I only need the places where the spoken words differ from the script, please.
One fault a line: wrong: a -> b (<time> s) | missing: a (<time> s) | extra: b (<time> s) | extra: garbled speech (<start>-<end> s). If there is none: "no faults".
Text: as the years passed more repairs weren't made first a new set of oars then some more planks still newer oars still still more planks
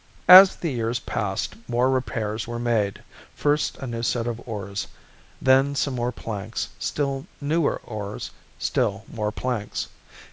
wrong: weren't -> were (2.4 s)
missing: still (9.0 s)